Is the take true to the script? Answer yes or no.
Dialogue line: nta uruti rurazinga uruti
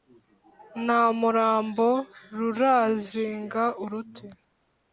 no